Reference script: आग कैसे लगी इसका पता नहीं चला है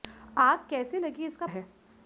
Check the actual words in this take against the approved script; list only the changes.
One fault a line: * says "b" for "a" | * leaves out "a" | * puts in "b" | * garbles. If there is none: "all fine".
* leaves out "पता नहीं चला"